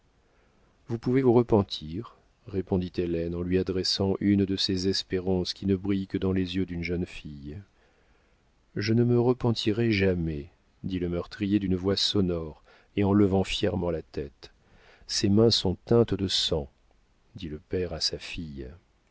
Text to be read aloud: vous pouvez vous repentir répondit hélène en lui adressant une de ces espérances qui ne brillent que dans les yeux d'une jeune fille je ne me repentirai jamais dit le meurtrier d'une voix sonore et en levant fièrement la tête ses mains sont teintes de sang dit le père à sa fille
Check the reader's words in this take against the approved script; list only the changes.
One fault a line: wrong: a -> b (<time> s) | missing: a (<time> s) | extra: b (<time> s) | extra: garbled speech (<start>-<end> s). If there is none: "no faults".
no faults